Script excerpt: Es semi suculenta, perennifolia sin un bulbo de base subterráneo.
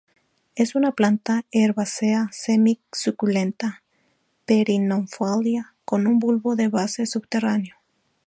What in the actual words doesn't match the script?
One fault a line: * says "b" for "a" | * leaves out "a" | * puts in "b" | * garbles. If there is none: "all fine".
* puts in "una planta herbácea"
* says "con" for "sin"